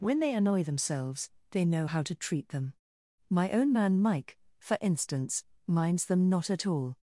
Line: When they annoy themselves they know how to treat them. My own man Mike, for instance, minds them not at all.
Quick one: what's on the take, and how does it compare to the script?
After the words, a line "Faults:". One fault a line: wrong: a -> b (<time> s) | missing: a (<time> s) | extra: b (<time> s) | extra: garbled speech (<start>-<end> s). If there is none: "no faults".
When they annoy themselves they know how to treat them. My own man Mike, for instance, minds them not at all.
Faults:
no faults